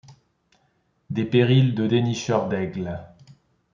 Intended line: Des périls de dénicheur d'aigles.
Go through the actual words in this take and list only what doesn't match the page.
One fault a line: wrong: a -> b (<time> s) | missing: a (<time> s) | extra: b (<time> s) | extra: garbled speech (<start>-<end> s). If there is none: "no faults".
no faults